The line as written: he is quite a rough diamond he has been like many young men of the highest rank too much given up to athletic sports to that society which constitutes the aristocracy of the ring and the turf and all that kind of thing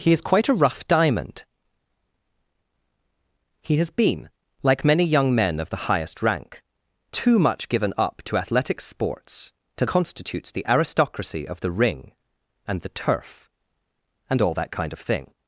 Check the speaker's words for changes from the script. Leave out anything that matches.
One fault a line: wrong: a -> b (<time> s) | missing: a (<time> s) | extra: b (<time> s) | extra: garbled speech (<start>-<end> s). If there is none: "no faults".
missing: that society which (9.8 s)